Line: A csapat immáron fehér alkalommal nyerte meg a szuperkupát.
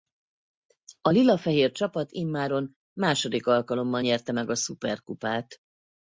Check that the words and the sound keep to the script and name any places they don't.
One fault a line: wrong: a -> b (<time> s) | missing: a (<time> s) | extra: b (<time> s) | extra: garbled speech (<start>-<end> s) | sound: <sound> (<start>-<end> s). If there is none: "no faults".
extra: lila fehér (1.1 s)
wrong: fehér -> második (3.0 s)